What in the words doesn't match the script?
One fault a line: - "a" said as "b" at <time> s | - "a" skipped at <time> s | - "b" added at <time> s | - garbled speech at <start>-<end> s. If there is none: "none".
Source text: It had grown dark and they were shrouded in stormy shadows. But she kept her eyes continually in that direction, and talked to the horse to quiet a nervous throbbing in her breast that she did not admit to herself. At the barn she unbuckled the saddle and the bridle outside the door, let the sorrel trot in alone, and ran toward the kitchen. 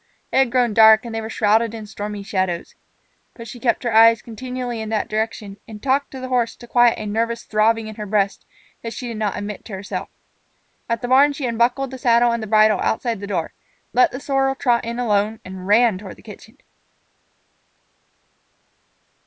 none